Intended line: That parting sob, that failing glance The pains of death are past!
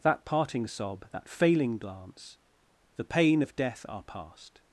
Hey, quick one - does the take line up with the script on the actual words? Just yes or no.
no